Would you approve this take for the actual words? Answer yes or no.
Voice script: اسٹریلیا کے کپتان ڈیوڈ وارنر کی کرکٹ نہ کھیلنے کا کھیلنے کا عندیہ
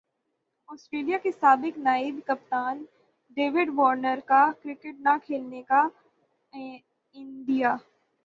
no